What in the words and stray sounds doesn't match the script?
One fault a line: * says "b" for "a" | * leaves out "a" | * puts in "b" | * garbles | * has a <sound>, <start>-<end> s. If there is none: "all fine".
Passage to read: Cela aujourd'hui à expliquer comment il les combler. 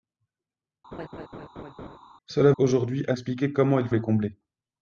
* has a laugh, 0.9-2.0 s